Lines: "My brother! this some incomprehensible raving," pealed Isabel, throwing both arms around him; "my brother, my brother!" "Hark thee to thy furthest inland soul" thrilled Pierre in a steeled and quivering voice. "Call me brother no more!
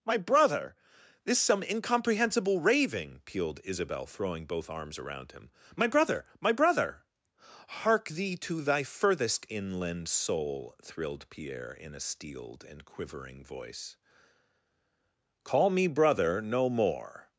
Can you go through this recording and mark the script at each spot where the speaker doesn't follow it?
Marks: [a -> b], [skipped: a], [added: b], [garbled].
"My brother! this some incomprehensible raving," pealed Isabel, throwing both arms around him; "my brother, my brother!" "Hark thee to thy furthest inland soul" thrilled Pierre in a steeled and quivering voice. "Call me brother no more!